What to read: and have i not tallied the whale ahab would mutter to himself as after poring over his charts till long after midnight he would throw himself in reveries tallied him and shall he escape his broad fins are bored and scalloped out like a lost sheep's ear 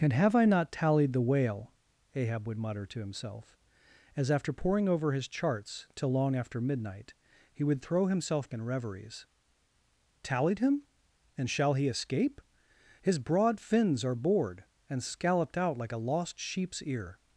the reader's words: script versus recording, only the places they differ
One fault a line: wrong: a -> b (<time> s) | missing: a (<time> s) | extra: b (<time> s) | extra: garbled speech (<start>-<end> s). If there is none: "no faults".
no faults